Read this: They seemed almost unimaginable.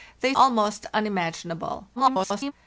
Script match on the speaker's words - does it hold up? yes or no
no